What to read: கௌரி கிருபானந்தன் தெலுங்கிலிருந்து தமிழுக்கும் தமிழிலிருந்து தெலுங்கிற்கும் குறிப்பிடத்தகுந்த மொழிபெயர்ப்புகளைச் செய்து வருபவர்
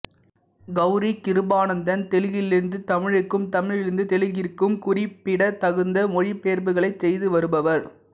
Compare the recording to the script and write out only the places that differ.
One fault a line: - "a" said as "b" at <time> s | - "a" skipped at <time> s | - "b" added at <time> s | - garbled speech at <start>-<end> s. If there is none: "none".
none